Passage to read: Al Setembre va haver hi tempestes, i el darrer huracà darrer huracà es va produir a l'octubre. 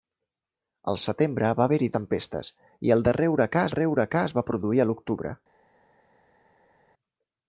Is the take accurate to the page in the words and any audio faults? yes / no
yes